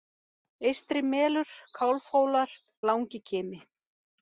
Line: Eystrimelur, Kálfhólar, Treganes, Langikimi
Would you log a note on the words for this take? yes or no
yes